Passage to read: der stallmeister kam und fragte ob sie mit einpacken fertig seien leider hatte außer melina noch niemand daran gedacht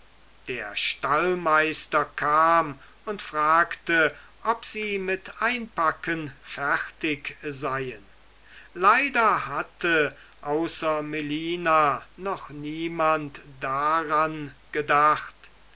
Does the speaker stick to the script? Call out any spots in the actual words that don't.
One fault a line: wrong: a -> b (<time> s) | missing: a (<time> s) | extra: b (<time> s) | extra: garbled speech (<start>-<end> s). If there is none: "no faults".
no faults